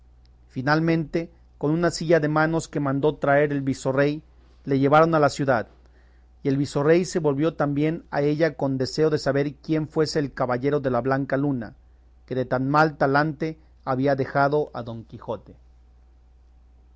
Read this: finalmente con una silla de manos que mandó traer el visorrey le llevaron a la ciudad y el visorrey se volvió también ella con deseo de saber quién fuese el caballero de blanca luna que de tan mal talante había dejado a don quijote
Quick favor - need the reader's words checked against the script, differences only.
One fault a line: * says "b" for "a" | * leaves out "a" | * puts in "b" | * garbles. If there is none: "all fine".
* puts in "a"
* puts in "la"